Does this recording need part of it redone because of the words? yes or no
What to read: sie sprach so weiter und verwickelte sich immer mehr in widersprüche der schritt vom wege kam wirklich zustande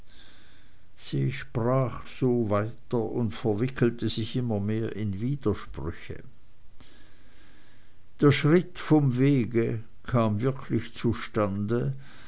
no